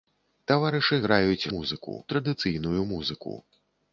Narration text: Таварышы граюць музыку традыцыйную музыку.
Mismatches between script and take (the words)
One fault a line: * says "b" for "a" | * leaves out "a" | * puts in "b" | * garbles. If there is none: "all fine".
all fine